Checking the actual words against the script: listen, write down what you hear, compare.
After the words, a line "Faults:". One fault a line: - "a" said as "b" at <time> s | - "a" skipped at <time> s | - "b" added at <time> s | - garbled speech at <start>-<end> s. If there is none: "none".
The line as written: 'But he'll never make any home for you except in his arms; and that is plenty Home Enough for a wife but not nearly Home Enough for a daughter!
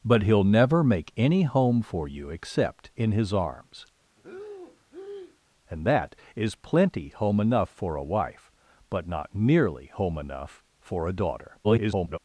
'But he'll never make any home for you except in his arms; and that is plenty Home Enough for a wife but not nearly Home Enough for a daughter! [garbled]
Faults:
- garbled speech at 11.6-12.2 s